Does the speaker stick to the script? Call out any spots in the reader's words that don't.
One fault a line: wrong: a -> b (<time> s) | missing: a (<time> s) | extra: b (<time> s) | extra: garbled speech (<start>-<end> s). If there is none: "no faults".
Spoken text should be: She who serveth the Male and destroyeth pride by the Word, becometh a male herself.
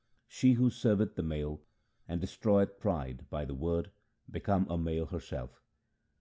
no faults